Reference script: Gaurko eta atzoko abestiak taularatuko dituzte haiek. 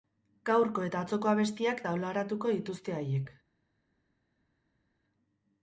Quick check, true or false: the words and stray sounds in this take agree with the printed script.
true